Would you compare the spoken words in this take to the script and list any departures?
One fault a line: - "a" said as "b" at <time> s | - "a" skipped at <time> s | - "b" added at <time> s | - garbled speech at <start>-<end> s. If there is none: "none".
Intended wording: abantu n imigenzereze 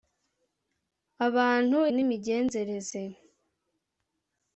none